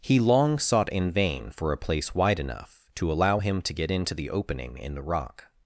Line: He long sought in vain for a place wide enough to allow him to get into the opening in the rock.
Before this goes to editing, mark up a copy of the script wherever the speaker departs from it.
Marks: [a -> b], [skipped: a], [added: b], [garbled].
He long sought in vain for a place wide enough to allow him to get into the opening in the rock.